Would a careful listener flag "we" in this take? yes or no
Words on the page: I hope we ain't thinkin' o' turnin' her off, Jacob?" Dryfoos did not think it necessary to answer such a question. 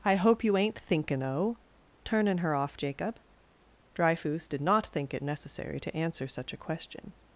yes